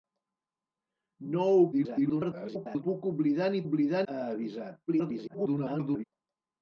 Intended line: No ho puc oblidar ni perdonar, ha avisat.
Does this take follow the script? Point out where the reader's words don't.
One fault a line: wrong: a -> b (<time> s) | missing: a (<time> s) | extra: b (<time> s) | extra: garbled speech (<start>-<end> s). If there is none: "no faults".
extra: garbled speech (1.7-2.8 s)
wrong: perdonar -> oblidar (3.6 s)
extra: garbled speech (4.9-6.0 s)